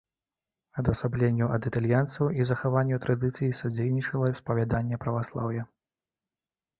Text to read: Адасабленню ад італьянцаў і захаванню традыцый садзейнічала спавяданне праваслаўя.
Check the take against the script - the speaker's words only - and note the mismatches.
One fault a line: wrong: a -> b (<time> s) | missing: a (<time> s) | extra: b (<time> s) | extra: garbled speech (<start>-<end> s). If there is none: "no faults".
no faults